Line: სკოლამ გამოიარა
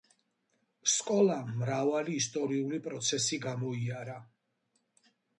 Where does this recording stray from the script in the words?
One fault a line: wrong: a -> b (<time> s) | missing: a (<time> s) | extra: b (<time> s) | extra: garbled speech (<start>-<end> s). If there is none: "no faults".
extra: მრავალი ისტორიული პროცესი (1.6 s)